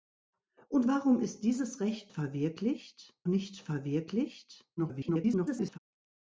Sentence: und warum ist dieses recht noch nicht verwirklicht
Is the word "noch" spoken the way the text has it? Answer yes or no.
no